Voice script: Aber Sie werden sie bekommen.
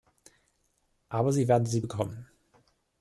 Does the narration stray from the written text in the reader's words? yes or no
no